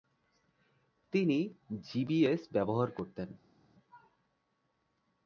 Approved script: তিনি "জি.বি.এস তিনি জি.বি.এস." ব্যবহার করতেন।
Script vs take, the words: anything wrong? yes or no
yes